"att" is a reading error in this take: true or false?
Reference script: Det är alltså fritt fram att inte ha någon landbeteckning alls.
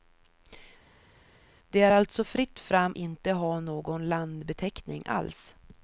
true